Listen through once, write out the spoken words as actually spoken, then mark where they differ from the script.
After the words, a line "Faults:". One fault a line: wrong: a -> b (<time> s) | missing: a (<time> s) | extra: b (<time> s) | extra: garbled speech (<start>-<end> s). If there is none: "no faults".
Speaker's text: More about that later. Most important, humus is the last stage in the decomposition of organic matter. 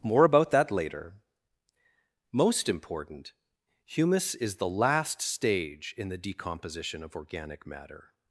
More about that later. Most important, humus is the last stage in the decomposition of organic matter.
Faults:
no faults